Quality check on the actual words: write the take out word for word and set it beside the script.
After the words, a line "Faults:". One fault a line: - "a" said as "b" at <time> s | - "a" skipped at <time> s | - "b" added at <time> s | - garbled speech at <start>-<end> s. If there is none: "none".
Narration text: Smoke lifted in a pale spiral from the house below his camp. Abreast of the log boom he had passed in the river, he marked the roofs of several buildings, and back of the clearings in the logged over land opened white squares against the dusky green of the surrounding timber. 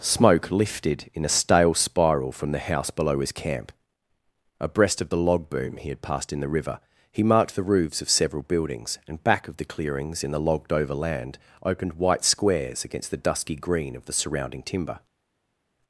Smoke lifted in a stale spiral from the house below his camp. Abreast of the log boom he had passed in the river, he marked the roofs of several buildings, and back of the clearings in the logged over land opened white squares against the dusky green of the surrounding timber.
Faults:
- "pale" said as "stale" at 1.3 s